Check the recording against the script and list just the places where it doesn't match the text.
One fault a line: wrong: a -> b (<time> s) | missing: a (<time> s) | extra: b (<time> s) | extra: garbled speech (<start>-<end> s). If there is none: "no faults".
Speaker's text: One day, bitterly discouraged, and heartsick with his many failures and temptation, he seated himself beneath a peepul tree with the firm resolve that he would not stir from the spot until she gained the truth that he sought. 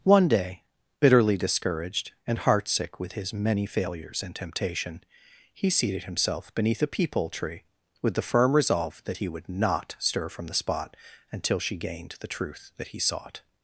no faults